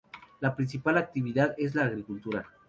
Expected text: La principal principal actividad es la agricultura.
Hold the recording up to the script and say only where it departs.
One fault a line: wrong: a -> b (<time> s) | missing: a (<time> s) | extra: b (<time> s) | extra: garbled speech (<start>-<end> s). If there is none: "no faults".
missing: principal (1.0 s)